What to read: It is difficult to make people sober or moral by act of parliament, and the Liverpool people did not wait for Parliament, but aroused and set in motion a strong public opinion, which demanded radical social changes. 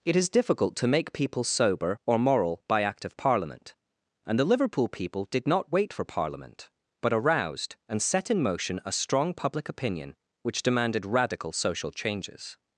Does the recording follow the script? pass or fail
pass